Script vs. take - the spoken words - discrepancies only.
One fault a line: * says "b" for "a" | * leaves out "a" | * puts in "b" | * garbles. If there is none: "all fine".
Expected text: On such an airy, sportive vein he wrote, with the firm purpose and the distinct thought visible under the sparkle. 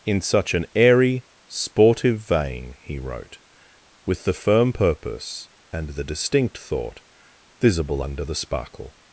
* says "In" for "On"